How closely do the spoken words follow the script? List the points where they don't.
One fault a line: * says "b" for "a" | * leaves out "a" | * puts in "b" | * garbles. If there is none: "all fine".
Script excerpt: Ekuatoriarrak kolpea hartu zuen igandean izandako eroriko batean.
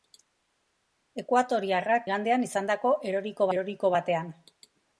* leaves out "kolpea hartu zuen"
* puts in "eroriko"